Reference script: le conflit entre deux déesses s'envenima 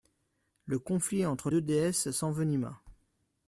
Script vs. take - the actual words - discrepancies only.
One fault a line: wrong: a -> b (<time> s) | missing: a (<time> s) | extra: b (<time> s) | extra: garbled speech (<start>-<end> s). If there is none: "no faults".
no faults